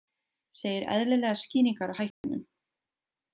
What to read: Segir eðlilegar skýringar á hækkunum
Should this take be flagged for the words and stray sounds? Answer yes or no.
yes